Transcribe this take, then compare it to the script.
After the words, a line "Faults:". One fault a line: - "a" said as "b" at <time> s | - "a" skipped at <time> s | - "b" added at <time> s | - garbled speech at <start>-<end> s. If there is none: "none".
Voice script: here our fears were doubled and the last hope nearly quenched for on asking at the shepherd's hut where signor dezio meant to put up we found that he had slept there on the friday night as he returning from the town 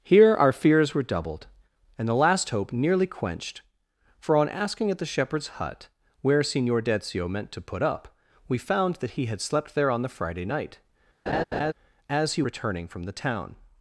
here our fears were doubled and the last hope nearly quenched for on asking at the shepherd's hut where signor dezio meant to put up we found that he had slept there on the friday night as he returning from the town
Faults:
none